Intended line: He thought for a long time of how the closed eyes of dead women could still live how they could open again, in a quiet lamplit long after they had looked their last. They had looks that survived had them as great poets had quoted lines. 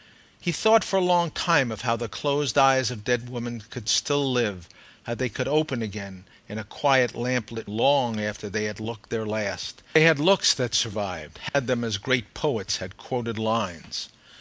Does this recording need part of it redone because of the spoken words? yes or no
no